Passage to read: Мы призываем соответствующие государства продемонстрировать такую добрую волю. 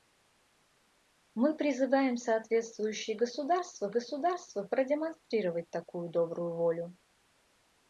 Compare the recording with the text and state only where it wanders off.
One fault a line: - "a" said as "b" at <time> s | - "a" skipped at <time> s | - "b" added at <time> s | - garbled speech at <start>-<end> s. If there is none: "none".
- "государства" added at 3.9 s